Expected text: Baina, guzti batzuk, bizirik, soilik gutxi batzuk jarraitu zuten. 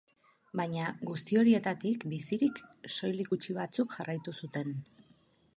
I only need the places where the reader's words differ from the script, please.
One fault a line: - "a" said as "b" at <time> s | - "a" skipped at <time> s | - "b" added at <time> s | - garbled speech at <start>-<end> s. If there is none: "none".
- "batzuk" said as "horietatik" at 1.4 s